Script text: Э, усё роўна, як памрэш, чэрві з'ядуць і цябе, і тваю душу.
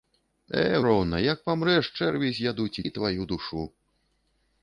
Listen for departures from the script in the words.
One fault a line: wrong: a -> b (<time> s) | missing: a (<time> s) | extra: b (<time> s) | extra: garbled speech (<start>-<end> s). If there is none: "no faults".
missing: усё (0.8 s)
missing: цябе (2.8 s)